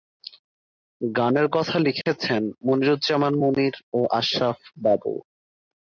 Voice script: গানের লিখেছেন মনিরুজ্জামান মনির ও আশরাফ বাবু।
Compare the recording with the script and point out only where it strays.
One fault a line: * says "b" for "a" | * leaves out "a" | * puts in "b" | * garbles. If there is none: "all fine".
* puts in "কথা"